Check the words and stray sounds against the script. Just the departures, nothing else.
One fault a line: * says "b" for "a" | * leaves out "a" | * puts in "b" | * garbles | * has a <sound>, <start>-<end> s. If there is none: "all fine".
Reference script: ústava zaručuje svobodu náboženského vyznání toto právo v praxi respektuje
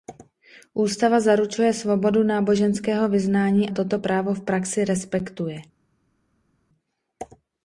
all fine